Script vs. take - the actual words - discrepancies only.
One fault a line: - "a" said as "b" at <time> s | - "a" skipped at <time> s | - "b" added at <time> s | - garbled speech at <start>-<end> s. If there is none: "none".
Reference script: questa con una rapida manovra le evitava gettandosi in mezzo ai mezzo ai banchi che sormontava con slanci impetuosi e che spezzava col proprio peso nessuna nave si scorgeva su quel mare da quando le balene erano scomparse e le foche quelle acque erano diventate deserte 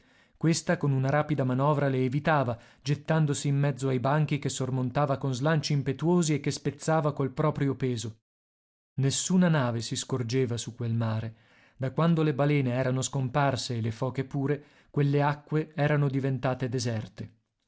- "mezzo ai" skipped at 4.0 s
- "pure" added at 14.2 s